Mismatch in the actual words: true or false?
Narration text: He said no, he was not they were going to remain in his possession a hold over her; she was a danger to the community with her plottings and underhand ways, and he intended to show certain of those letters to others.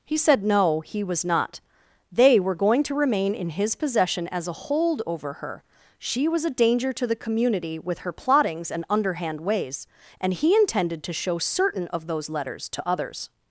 true